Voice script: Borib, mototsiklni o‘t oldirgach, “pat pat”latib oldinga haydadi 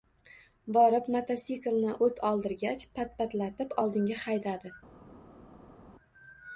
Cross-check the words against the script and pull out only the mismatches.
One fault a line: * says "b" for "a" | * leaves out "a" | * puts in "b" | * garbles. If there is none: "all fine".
all fine